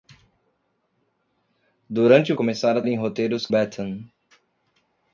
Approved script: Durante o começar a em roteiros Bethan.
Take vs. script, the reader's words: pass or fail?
pass